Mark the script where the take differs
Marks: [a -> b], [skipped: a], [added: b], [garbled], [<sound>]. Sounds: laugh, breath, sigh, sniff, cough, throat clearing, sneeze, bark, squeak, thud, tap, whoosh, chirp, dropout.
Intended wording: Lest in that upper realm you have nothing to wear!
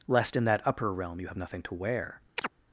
Lest in that upper realm you have nothing to wear! [chirp]